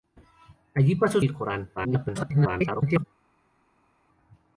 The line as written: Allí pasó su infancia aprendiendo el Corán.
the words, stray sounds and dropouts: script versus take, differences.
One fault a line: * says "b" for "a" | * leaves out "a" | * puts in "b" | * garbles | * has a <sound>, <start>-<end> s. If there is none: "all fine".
* leaves out "su infancia aprendiendo"
* garbles